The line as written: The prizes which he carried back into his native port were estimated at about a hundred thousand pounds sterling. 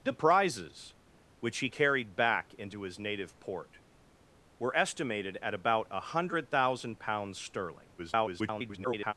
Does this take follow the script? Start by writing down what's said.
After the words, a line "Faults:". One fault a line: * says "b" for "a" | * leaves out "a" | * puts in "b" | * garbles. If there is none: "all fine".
The prizes which he carried back into his native port were estimated at about a hundred thousand pounds sterling. [garbled]
Faults:
* garbles